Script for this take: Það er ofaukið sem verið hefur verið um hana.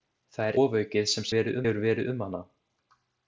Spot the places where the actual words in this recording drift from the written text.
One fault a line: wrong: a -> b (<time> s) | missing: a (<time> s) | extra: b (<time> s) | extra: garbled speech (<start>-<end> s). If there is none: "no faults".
no faults